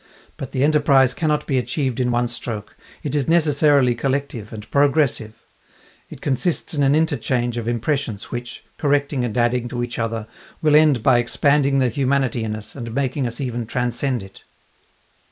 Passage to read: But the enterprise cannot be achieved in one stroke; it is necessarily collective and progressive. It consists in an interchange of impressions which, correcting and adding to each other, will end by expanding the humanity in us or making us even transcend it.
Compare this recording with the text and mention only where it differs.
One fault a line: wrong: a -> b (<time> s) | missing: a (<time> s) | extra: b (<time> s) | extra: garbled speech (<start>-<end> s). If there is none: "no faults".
wrong: or -> and (12.7 s)